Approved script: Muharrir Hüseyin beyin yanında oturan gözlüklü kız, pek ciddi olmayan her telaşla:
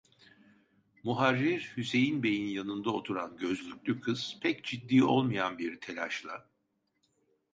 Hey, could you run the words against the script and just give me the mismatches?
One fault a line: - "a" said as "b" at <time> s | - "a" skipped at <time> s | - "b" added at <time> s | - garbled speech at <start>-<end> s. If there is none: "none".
- "her" said as "bir" at 5.6 s